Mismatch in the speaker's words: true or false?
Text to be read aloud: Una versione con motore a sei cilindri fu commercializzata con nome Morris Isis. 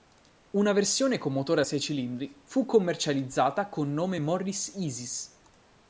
false